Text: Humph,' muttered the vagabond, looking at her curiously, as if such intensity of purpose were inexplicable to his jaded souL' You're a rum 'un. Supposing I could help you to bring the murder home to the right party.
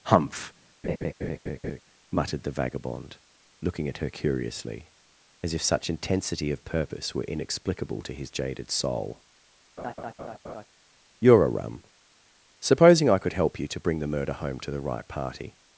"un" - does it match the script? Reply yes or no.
no